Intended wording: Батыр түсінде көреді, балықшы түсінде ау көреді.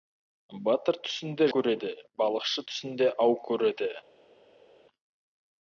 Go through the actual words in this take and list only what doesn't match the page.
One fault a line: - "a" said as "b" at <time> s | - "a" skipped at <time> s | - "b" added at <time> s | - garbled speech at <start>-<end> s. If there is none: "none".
none